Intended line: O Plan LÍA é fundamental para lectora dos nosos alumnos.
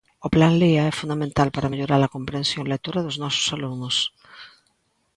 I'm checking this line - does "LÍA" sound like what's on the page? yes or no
yes